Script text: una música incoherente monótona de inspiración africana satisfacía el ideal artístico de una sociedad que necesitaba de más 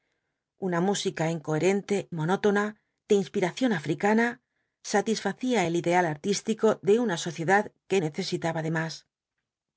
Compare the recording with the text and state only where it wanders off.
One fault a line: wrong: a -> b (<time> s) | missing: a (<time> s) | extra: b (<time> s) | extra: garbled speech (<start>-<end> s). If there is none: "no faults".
no faults